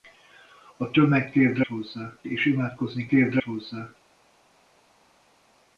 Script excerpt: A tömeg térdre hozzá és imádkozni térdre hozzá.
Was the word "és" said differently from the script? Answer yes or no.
no